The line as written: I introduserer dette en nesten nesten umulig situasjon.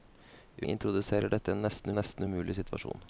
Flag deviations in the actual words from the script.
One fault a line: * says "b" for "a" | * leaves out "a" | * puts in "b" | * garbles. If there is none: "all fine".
all fine